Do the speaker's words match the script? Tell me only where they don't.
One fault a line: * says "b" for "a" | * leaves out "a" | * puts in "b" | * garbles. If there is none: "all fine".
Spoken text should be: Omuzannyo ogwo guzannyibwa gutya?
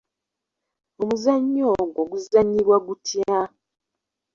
all fine